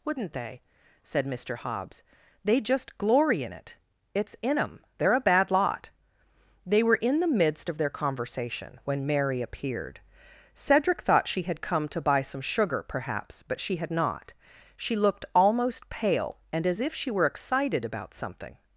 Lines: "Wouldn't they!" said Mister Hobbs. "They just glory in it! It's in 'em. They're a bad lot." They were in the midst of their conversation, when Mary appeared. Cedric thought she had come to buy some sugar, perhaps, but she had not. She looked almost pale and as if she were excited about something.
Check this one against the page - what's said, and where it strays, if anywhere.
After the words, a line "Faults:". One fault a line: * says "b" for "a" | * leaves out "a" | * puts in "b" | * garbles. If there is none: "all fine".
"Wouldn't they!" said Mister Hobbs. "They just glory in it! It's in 'em. They're a bad lot." They were in the midst of their conversation, when Mary appeared. Cedric thought she had come to buy some sugar, perhaps, but she had not. She looked almost pale and as if she were excited about something.
Faults:
all fine